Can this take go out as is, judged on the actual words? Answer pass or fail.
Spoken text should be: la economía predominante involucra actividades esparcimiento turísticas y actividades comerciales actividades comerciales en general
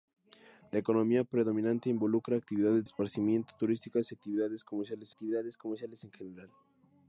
pass